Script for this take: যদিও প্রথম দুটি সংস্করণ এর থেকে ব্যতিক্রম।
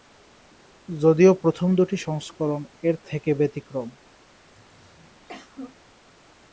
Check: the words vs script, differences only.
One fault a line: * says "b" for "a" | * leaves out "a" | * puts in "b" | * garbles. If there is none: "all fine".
all fine